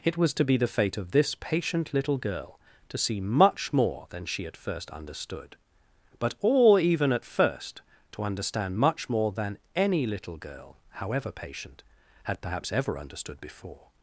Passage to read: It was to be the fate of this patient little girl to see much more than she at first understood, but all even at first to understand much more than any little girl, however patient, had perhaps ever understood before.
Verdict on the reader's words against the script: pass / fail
pass